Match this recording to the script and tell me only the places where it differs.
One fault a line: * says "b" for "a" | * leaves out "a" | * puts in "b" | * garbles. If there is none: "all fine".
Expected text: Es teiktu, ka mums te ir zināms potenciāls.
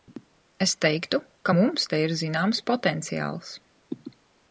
all fine